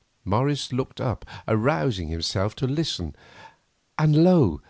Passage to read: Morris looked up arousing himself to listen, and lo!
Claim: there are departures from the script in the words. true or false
false